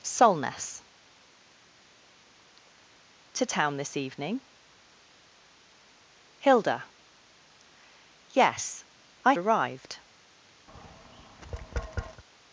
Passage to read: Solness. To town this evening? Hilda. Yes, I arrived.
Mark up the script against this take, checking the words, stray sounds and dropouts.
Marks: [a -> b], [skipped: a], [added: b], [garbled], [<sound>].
Solness. To town this evening? Hilda. Yes, I arrived. [tap]